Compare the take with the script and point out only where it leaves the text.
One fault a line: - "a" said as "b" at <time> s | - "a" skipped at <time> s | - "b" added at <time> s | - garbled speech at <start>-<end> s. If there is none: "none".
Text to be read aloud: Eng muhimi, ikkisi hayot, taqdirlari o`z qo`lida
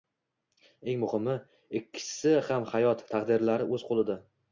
- "ham" added at 2.5 s